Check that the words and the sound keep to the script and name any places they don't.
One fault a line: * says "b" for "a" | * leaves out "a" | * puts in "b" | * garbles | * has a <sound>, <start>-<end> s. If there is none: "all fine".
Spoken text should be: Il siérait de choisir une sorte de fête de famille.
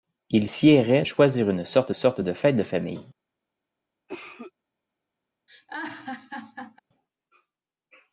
* leaves out "de"
* puts in "sorte"
* has a cough, 4.1-4.5 s
* has a laugh, 5.5-6.8 s